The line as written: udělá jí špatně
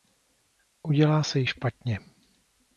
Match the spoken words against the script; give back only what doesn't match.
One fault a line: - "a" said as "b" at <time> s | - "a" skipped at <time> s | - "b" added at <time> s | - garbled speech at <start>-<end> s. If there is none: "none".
- "se" added at 1.2 s